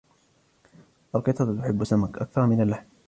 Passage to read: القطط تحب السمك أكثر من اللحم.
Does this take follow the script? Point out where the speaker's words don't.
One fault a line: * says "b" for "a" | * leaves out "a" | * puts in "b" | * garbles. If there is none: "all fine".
all fine